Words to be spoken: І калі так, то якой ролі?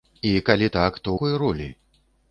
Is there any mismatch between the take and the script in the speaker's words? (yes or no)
no